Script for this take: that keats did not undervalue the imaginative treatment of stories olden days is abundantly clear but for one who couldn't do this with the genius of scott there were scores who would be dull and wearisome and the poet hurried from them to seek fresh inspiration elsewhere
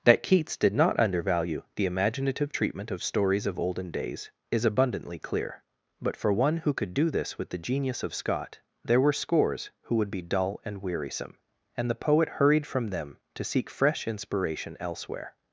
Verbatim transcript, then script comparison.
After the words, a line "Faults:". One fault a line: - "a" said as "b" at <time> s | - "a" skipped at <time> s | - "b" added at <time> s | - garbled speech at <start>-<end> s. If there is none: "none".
that keats did not undervalue the imaginative treatment of stories of olden days is abundantly clear but for one who could do this with the genius of scott there were scores who would be dull and wearisome and the poet hurried from them to seek fresh inspiration elsewhere
Faults:
- "of" added at 3.4 s
- "couldn't" said as "could" at 6.7 s